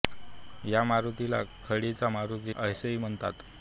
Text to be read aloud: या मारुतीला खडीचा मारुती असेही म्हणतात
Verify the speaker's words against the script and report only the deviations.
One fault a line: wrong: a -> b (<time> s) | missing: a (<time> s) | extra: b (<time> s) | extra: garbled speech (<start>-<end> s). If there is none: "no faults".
no faults